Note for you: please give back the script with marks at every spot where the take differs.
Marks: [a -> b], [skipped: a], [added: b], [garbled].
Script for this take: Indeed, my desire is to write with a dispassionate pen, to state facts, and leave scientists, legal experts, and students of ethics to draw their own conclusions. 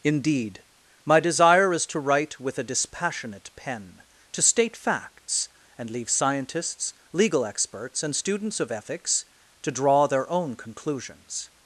Indeed, my desire is to write with a dispassionate pen, to state facts, and leave scientists, legal experts, and students of ethics to draw their own conclusions.